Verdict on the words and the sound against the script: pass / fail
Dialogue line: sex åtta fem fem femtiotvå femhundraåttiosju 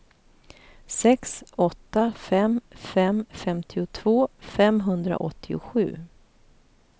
pass